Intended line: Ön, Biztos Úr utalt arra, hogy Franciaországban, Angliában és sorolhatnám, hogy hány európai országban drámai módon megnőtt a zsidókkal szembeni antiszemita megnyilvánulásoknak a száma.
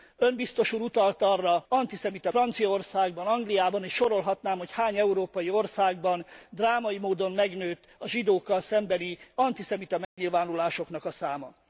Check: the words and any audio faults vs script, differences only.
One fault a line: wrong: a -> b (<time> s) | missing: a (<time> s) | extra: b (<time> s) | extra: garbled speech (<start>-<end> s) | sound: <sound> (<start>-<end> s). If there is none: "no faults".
wrong: hogy -> antiszemita (1.7 s)
sound: dropout (10.0-10.2 s)